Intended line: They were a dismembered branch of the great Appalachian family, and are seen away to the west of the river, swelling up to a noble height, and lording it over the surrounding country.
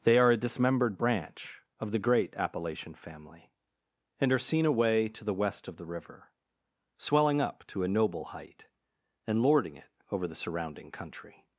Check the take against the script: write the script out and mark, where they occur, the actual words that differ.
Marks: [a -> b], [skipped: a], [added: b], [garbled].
They [were -> are] a dismembered branch of the great Appalachian family, and are seen away to the west of the river, swelling up to a noble height, and lording it over the surrounding country.